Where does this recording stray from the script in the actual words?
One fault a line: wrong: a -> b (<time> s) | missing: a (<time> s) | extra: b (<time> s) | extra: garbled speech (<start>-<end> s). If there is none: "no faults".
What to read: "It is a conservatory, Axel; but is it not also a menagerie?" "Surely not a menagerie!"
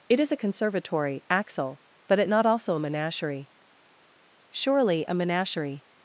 missing: is (2.2 s)
missing: not (5.1 s)